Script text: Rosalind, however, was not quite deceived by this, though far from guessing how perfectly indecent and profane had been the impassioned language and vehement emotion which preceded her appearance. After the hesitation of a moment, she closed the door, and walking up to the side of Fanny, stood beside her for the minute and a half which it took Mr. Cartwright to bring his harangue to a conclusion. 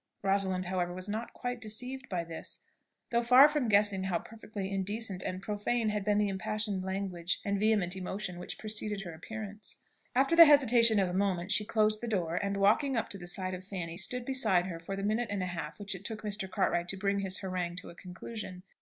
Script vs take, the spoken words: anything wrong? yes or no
no